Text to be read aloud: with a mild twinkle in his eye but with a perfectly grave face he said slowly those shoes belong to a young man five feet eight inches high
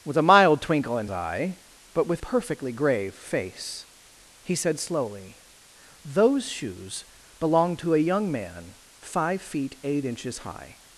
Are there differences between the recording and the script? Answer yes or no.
yes